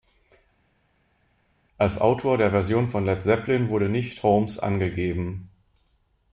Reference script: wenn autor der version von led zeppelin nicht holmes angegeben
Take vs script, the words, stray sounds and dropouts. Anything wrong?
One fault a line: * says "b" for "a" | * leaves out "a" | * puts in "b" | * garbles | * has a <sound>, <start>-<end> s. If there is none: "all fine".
* says "als" for "wenn"
* puts in "wurde"